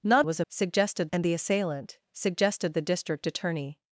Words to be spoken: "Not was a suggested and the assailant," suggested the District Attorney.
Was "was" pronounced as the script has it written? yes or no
yes